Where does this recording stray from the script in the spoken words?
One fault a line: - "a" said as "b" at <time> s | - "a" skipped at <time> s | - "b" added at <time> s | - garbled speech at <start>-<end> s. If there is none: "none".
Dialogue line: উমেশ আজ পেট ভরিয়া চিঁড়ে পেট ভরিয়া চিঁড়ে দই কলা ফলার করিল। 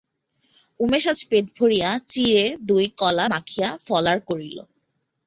- "পেট ভরিয়া চিঁড়ে" skipped at 2.5 s
- "মাখিয়া" added at 3.3 s